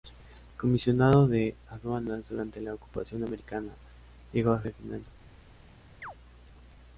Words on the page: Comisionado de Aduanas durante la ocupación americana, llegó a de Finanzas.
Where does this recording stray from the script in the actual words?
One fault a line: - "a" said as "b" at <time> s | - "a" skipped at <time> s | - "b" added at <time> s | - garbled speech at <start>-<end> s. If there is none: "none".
none